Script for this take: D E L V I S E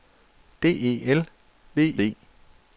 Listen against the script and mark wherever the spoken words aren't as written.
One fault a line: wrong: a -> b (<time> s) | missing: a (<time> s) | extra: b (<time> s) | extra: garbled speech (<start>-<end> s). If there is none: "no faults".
missing: I S (1.8 s)